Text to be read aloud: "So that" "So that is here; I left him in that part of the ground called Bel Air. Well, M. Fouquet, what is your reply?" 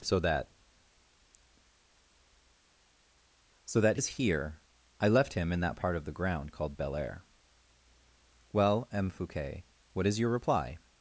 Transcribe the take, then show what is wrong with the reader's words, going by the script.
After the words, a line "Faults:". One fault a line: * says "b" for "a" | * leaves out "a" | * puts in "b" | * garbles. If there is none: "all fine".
"So that" "So that is here; I left him in that part of the ground called Bel Air. Well, M. Fouquet, what is your reply?"
Faults:
all fine